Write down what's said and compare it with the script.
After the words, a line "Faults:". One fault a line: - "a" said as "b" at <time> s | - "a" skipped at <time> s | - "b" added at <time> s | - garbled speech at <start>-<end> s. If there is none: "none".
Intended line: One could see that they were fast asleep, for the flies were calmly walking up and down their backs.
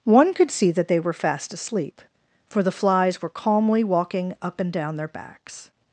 One could see that they were fast asleep, for the flies were calmly walking up and down their backs.
Faults:
none